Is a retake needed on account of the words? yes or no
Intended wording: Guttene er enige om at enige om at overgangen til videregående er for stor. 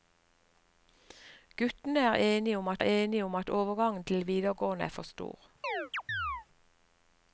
no